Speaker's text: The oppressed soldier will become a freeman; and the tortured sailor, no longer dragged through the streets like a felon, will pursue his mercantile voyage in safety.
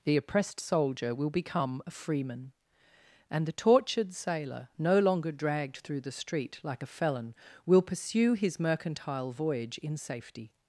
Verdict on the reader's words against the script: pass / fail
fail